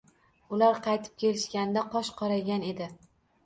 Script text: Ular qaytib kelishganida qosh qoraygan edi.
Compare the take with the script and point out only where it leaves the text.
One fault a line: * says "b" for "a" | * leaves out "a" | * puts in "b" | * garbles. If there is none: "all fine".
all fine